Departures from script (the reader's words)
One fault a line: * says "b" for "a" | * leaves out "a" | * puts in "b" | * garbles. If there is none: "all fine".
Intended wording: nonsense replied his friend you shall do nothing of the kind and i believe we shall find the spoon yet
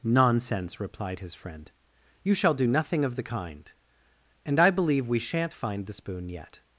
* says "shan't" for "shall"